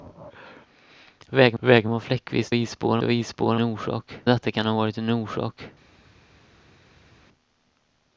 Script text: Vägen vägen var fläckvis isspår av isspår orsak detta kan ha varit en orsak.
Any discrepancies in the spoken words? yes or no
no